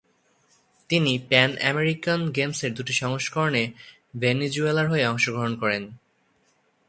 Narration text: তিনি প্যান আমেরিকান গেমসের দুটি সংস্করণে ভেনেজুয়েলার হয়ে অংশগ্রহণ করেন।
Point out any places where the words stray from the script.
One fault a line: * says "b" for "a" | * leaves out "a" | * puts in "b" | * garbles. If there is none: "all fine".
all fine